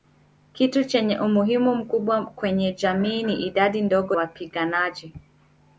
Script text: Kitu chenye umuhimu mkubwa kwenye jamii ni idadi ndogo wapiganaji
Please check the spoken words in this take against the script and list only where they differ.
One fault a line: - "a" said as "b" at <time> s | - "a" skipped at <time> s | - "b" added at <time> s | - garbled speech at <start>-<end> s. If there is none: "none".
none